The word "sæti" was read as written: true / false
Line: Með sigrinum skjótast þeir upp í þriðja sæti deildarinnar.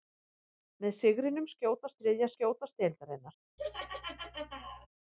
false